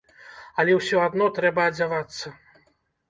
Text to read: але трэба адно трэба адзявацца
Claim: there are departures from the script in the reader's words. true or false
true